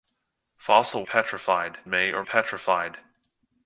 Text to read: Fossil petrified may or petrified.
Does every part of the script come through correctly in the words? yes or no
yes